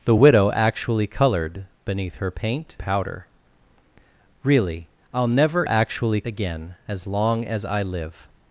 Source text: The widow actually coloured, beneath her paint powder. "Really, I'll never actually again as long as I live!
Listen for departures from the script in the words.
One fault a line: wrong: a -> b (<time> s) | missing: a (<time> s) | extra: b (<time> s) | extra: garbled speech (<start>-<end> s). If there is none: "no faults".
no faults